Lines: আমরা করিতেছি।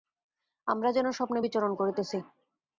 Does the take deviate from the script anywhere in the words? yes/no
yes